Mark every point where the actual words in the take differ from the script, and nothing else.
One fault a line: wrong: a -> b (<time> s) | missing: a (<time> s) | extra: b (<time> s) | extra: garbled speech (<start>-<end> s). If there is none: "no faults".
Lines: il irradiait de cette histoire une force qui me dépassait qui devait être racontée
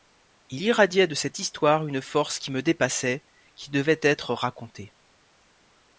no faults